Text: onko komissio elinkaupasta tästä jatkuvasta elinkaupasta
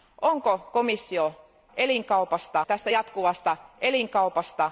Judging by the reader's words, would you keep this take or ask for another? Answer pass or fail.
pass